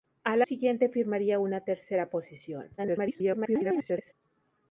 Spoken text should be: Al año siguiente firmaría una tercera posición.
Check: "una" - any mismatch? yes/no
no